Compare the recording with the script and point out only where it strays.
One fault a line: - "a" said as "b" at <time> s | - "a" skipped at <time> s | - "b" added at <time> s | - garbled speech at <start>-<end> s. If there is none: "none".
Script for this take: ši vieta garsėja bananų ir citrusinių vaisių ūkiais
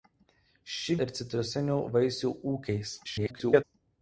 - "vieta garsėja bananų" skipped at 0.9 s
- garbled speech at 3.0-3.6 s